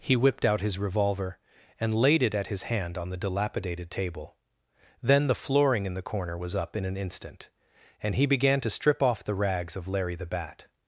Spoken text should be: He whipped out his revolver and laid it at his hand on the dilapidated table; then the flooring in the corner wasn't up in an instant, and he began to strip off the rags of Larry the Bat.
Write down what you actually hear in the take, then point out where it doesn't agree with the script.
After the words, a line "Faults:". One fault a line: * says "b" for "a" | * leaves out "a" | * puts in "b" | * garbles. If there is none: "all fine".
He whipped out his revolver and laid it at his hand on the dilapidated table; then the flooring in the corner was up in an instant, and he began to strip off the rags of Larry the Bat.
Faults:
* says "was" for "wasn't"